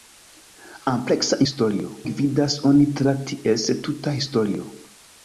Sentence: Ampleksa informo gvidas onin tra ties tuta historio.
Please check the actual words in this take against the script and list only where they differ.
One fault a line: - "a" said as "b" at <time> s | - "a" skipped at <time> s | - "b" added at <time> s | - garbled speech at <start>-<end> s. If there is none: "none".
- "informo" said as "historio" at 1.5 s